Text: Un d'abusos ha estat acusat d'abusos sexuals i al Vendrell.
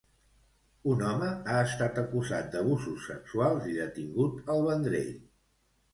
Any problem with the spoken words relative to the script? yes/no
yes